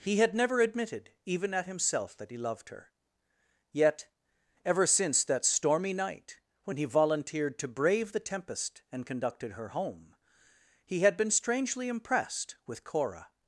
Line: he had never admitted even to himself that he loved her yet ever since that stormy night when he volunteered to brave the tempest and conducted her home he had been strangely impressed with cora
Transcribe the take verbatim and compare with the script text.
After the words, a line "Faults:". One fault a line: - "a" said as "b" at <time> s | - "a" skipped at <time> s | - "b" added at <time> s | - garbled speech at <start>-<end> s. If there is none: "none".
he had never admitted even at himself that he loved her yet ever since that stormy night when he volunteered to brave the tempest and conducted her home he had been strangely impressed with cora
Faults:
- "to" said as "at" at 1.5 s